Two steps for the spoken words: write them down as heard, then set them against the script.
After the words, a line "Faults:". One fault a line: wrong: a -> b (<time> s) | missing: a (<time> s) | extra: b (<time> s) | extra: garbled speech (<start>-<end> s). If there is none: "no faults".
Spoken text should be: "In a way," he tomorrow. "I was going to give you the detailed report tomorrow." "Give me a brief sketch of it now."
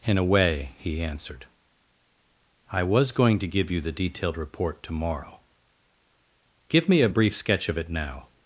"In a way," he answered. "I was going to give you the detailed report tomorrow." "Give me a brief sketch of it now."
Faults:
wrong: tomorrow -> answered (1.0 s)